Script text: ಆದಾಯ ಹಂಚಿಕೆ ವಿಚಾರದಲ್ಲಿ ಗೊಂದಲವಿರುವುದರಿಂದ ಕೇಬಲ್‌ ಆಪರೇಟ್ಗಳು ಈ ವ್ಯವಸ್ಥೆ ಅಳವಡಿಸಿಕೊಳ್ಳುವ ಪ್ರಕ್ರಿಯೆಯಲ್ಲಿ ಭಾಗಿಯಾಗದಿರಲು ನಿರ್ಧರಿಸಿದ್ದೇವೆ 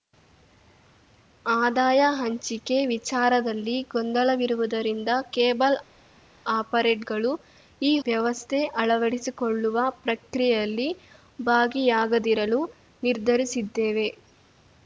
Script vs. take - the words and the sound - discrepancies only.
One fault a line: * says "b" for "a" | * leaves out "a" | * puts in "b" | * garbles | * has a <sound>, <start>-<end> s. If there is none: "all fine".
all fine